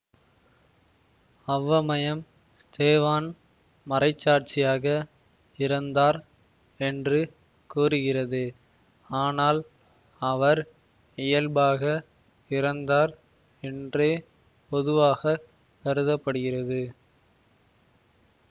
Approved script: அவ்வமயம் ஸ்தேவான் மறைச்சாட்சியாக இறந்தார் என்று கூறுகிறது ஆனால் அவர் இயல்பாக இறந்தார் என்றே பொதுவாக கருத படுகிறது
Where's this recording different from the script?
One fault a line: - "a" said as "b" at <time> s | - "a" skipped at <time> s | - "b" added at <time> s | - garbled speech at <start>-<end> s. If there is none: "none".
none